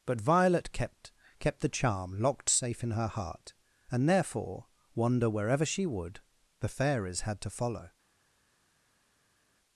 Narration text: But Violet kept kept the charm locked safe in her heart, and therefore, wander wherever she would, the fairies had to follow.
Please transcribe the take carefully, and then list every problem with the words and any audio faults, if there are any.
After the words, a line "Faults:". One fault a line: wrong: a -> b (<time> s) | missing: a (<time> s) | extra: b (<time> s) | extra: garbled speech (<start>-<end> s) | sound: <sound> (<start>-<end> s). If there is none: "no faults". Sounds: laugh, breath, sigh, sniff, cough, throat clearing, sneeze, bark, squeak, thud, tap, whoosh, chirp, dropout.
But Violet kept kept the charm locked safe in her heart, and therefore, wander wherever she would, the fairies had to follow.
Faults:
no faults